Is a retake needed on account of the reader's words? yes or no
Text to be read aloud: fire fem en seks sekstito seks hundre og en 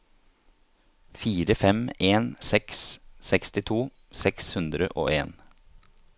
no